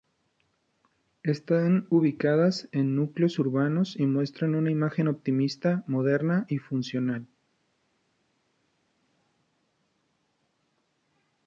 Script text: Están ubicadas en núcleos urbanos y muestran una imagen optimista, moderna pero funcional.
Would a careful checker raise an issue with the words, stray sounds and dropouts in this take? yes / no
yes